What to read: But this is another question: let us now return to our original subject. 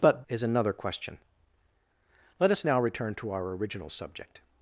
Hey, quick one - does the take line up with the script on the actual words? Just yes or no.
no